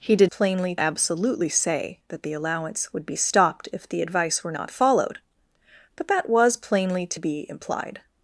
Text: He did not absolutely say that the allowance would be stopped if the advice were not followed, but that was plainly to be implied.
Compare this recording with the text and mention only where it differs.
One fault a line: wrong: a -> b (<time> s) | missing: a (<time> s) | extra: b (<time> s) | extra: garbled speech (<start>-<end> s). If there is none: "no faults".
wrong: not -> plainly (0.2 s)